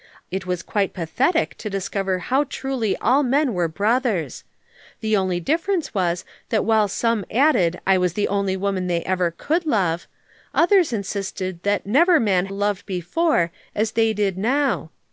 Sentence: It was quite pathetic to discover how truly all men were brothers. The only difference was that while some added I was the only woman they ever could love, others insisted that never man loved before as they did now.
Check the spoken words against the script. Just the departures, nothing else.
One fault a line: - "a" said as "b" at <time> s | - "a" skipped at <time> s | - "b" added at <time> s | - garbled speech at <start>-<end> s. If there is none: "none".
none